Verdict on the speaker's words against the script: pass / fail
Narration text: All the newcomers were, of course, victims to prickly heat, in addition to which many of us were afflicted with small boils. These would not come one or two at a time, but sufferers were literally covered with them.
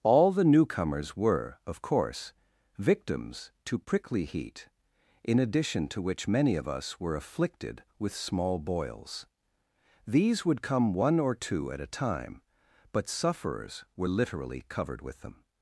fail